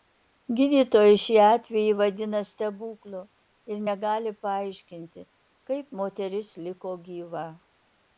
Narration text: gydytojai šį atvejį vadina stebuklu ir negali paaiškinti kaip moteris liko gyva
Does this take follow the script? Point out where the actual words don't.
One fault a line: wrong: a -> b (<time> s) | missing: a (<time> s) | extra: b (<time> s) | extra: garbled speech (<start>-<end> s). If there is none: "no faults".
no faults